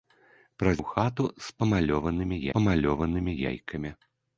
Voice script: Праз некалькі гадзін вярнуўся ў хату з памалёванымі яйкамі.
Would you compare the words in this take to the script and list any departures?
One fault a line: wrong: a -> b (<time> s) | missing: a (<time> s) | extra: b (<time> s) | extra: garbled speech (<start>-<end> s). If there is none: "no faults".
missing: некалькі гадзін вярнуўся (0.8 s)
extra: памалёванымі (2.6 s)